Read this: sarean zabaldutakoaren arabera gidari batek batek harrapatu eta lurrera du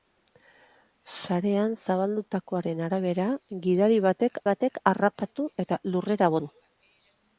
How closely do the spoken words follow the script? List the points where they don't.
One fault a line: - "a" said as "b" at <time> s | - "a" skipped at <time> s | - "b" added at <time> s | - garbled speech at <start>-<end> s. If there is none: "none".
none